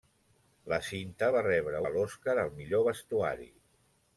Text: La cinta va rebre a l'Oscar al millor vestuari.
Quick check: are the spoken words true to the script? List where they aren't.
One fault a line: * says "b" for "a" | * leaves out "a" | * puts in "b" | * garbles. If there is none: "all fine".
all fine